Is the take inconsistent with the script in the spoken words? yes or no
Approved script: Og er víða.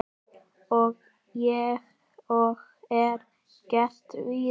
yes